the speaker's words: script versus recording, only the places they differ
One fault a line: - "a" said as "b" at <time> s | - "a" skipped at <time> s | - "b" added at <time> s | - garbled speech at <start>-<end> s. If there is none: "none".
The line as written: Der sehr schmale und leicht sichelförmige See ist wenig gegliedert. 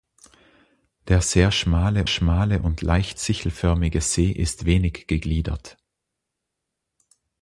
- "schmale" added at 2.1 s